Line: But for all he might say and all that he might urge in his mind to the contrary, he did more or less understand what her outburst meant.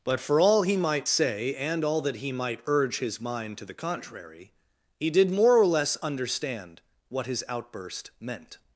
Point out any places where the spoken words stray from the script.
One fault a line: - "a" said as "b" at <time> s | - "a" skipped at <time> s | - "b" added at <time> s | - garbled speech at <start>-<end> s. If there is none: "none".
- "in" skipped at 3.0 s
- "her" said as "his" at 7.2 s